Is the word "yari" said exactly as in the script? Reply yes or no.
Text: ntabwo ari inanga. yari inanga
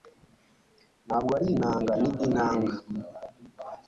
no